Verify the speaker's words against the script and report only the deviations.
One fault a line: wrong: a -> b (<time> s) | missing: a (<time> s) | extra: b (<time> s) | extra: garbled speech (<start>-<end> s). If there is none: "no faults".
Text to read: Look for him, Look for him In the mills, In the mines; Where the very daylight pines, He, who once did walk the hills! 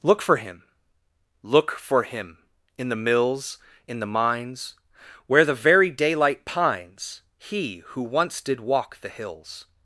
no faults